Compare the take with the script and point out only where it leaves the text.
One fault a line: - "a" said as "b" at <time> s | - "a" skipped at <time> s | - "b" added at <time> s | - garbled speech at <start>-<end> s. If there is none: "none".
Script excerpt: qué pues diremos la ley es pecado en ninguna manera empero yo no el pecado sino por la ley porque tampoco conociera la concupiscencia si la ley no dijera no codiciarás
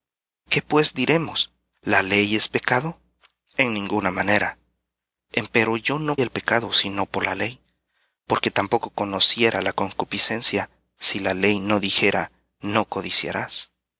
none